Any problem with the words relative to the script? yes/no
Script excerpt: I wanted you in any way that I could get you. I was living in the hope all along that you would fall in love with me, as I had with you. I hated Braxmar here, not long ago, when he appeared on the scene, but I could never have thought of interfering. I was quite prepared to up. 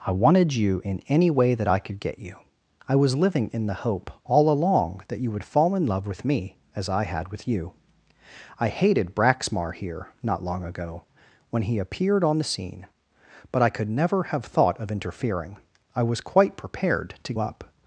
no